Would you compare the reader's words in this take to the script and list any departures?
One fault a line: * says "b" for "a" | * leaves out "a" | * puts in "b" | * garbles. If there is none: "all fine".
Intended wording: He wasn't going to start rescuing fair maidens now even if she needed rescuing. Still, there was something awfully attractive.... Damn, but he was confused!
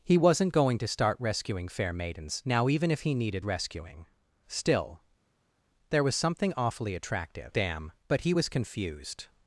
* says "he" for "she"